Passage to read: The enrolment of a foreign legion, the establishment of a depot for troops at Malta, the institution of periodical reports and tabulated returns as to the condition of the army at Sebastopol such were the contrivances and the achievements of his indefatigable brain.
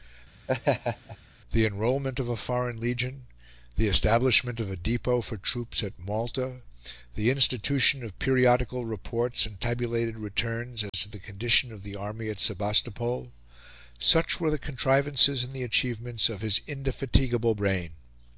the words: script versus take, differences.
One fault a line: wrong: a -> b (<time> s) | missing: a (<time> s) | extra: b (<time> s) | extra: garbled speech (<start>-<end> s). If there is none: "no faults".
no faults